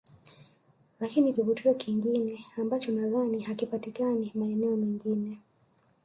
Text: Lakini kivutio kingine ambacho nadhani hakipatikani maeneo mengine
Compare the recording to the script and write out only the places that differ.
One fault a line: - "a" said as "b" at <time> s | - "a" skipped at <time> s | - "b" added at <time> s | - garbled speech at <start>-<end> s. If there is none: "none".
none